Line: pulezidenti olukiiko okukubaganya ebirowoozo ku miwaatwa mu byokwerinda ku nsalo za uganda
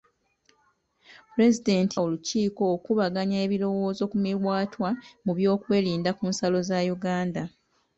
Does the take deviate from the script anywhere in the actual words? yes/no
no